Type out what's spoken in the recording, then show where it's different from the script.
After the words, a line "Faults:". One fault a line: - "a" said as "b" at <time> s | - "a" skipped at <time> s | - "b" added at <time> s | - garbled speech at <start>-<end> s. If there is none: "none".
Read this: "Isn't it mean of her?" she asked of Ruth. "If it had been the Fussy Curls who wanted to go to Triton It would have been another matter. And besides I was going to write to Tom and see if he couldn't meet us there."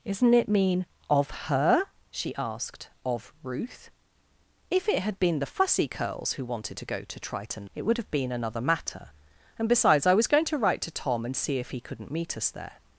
"Isn't it mean of her?" she asked of Ruth. "If it had been the Fussy Curls who wanted to go to Triton It would have been another matter. And besides I was going to write to Tom and see if he couldn't meet us there."
Faults:
none